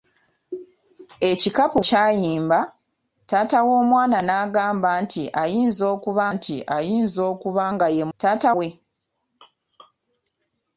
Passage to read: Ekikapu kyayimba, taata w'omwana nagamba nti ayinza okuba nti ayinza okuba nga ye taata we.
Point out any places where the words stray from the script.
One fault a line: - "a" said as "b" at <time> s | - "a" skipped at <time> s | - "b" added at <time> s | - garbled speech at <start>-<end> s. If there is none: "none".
none